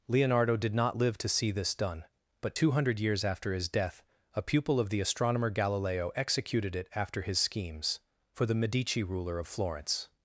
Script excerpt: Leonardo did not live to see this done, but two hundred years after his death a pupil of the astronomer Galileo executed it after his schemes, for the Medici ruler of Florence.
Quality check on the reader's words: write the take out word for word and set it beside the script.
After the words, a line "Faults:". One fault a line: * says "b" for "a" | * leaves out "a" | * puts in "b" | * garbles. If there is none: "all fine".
Leonardo did not live to see this done, but two hundred years after his death a pupil of the astronomer Galileo executed it after his schemes, for the Medici ruler of Florence.
Faults:
all fine